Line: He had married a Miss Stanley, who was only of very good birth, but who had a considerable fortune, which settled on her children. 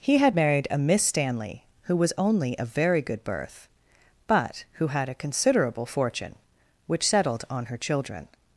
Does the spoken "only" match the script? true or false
true